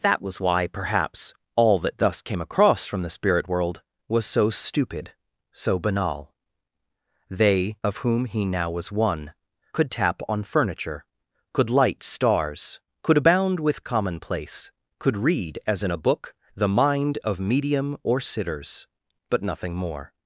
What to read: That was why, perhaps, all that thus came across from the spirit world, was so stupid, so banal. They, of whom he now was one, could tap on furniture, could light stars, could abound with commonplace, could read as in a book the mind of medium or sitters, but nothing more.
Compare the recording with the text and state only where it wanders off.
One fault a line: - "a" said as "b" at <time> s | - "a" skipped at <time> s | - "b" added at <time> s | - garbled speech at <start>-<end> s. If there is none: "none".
none